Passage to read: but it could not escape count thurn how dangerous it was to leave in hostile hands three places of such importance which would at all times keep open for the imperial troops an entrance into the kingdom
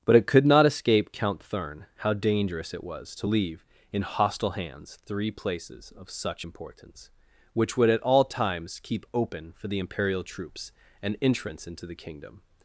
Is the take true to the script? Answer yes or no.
yes